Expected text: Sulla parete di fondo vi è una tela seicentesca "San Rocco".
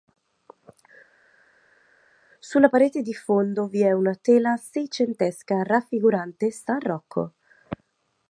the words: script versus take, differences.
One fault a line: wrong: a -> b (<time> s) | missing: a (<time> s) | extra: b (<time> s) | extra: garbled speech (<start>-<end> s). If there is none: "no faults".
extra: raffigurante (5.6 s)